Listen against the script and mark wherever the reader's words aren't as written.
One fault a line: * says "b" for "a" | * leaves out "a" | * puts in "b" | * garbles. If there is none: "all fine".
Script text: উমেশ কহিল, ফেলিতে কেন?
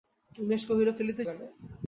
all fine